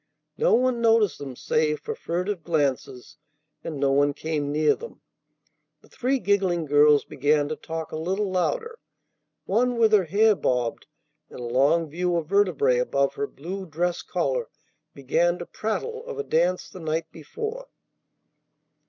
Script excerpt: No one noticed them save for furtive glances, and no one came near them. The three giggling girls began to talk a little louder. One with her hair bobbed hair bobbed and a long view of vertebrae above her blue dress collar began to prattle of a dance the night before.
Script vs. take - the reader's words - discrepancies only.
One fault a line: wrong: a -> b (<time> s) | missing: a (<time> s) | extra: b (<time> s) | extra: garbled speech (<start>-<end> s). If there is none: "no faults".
missing: hair bobbed (10.9 s)